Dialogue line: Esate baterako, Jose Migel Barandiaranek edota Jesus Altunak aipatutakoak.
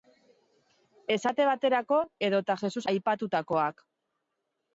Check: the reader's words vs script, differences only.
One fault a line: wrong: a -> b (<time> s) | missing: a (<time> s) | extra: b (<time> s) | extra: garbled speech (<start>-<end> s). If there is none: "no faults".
missing: Jose Migel Barandiaranek (2.0 s)
missing: Altunak (2.8 s)